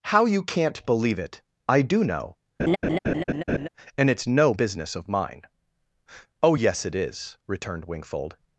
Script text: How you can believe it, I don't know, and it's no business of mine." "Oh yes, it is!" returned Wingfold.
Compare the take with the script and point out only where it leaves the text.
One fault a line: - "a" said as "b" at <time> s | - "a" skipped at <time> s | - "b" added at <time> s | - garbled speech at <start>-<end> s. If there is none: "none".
- "can" said as "can't" at 0.4 s
- "don't" said as "do" at 1.8 s